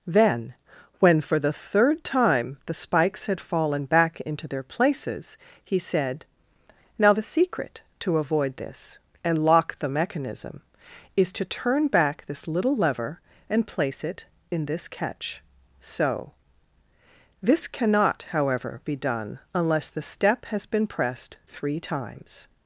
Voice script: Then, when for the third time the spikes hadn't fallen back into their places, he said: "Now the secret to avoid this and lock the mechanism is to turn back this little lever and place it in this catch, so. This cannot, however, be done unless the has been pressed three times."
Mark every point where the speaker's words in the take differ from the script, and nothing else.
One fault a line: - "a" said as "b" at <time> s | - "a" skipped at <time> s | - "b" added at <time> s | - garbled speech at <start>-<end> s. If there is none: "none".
- "hadn't" said as "had" at 3.3 s
- "step" added at 20.0 s